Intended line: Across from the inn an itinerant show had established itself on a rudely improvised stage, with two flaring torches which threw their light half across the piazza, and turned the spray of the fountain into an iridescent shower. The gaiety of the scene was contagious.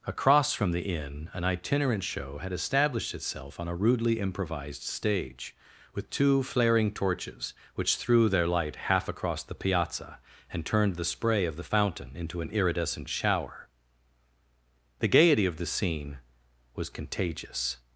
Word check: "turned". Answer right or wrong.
right